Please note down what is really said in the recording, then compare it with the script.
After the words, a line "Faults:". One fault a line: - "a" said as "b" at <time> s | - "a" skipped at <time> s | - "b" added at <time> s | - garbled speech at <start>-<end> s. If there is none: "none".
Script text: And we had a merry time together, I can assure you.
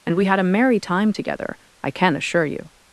And we had a merry time together, I can assure you.
Faults:
none